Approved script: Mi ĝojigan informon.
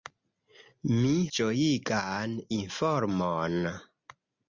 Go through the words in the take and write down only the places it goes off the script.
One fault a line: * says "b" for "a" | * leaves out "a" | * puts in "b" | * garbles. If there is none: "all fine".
all fine